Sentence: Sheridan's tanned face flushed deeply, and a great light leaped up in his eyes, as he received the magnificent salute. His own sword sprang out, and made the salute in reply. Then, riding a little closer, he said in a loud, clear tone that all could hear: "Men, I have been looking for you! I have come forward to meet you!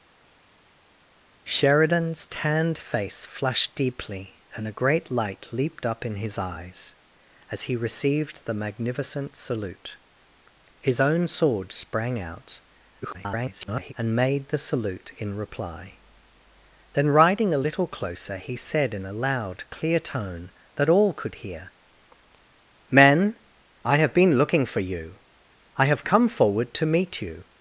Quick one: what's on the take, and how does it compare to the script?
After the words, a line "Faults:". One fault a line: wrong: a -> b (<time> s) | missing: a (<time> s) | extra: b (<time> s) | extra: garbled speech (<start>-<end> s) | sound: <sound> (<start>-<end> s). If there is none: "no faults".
Sheridan's tanned face flushed deeply, and a great light leaped up in his eyes, as he received the magnificent salute. His own sword sprang out, [garbled] and made the salute in reply. Then, riding a little closer, he said in a loud, clear tone that all could hear: "Men, I have been looking for you! I have come forward to meet you!
Faults:
extra: garbled speech (13.0-13.9 s)